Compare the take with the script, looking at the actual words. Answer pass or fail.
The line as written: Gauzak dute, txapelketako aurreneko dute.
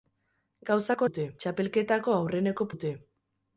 pass